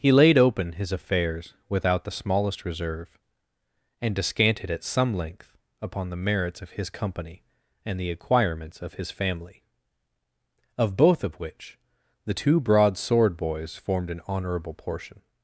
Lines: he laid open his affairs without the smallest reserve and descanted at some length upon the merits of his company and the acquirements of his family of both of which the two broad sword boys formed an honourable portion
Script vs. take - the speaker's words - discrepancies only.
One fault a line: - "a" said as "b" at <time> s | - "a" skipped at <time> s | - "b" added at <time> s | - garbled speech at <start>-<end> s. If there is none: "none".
none